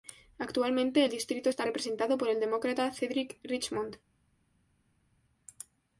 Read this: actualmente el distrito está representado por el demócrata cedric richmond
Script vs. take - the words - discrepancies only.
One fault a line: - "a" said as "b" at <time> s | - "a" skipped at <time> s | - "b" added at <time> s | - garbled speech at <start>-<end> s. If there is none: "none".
none